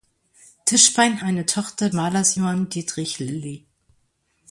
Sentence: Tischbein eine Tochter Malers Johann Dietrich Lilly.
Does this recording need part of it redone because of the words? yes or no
no